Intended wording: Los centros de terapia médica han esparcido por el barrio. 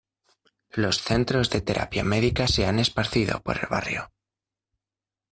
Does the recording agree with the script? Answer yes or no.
no